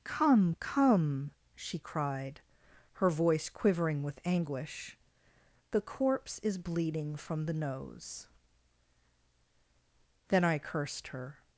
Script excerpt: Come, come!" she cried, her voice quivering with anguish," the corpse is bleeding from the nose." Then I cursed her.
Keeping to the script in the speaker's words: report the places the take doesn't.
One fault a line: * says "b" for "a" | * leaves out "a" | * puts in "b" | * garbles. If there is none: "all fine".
all fine